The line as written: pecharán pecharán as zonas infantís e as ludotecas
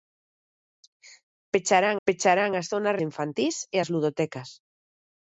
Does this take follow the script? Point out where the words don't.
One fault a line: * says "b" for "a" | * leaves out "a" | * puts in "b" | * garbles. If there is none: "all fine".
all fine